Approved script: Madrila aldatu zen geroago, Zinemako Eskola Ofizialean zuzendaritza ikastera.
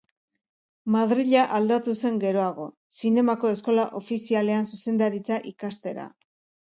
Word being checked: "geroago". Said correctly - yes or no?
yes